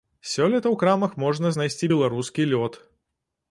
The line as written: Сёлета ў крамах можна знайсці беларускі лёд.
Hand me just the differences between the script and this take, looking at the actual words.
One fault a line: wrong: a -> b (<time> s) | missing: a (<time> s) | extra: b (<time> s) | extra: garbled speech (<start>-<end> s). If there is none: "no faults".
no faults